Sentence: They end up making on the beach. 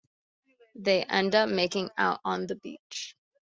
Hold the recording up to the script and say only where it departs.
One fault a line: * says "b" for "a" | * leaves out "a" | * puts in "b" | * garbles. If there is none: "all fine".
* puts in "out"